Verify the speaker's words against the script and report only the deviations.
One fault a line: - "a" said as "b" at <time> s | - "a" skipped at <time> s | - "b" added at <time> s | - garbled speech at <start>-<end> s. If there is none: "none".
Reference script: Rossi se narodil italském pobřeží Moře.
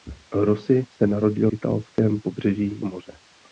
none